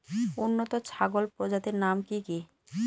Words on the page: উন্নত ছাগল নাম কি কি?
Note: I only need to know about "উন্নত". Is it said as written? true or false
true